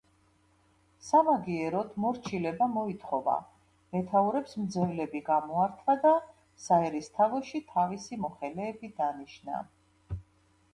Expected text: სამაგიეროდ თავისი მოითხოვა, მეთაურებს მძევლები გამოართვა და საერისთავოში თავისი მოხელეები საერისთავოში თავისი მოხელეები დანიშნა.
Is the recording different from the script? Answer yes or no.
yes